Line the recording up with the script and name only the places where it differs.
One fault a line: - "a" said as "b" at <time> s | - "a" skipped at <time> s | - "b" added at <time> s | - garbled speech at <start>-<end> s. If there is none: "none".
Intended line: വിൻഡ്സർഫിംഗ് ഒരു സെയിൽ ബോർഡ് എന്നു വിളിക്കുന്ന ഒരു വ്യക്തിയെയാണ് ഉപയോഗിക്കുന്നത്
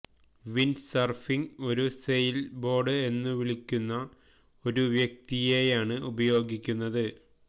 none